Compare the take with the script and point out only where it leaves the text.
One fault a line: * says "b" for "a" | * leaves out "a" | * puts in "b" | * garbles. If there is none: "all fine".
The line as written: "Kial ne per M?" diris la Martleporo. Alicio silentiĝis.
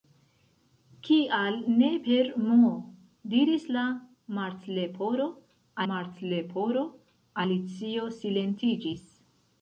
* puts in "Martleporo"